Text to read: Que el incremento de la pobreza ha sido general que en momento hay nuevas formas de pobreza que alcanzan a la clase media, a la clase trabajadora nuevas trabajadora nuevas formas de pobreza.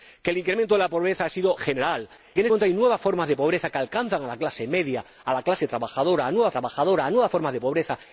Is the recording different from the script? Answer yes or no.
no